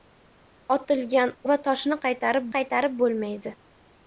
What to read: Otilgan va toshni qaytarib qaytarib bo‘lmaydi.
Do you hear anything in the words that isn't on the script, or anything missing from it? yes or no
no